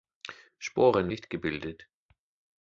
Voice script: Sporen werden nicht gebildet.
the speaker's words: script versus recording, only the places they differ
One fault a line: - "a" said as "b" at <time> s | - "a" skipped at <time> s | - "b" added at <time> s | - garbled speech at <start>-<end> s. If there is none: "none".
- "werden" skipped at 1.1 s